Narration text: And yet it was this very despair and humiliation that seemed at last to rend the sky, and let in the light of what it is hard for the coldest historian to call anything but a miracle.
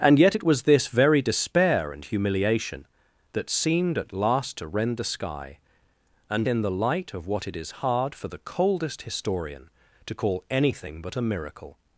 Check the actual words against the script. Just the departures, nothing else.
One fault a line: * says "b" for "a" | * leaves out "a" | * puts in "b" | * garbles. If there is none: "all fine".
* leaves out "let"